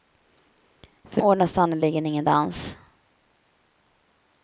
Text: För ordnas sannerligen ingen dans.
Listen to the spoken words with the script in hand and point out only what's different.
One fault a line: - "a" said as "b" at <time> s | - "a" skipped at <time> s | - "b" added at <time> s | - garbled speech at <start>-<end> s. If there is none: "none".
none